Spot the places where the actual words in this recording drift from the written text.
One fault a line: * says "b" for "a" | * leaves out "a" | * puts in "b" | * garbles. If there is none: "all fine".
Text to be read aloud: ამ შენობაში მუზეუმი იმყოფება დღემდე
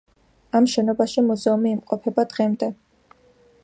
all fine